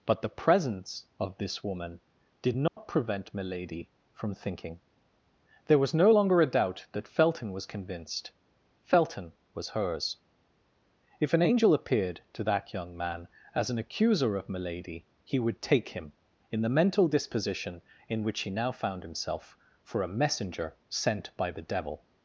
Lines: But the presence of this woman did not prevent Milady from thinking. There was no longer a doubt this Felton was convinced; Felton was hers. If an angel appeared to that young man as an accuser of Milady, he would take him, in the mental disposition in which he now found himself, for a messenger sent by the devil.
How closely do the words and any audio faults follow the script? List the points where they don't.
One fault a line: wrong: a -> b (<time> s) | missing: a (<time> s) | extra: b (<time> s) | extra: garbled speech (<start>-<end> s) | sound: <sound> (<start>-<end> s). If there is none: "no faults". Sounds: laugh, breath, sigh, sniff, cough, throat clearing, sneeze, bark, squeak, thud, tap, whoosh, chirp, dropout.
sound: dropout (2.7-2.8 s)
wrong: this -> that (6.9 s)